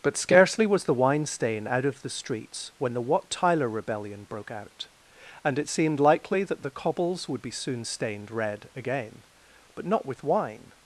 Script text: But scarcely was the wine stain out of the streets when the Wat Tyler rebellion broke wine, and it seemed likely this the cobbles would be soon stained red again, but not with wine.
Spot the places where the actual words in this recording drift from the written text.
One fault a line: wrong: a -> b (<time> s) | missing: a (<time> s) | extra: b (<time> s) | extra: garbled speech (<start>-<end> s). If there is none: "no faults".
wrong: wine -> out (4.5 s)
wrong: this -> that (6.4 s)